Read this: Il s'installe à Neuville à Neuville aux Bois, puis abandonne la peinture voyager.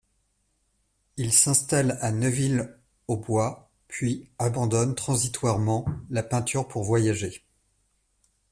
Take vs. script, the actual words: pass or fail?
fail